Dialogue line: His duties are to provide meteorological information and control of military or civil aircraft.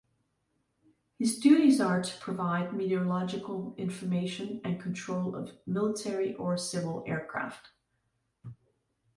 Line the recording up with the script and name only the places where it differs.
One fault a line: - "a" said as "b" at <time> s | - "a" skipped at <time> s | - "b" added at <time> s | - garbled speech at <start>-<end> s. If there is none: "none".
none